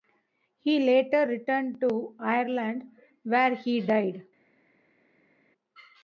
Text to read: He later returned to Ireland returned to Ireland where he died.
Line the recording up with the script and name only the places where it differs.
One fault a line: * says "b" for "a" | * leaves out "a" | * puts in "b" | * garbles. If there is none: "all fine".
* leaves out "returned to Ireland"